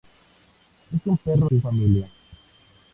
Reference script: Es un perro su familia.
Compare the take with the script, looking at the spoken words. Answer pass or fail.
pass